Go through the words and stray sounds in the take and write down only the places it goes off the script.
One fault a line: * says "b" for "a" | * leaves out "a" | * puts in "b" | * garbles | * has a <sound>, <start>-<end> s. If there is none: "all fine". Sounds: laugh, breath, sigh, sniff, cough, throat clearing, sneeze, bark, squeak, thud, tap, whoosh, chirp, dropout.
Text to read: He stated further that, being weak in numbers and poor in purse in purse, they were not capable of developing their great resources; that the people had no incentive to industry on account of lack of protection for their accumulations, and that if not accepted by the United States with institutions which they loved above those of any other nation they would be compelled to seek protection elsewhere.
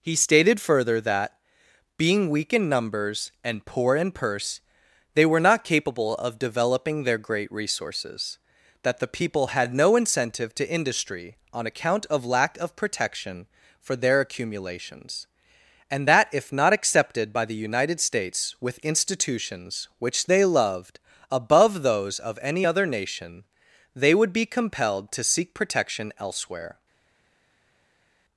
* leaves out "in purse"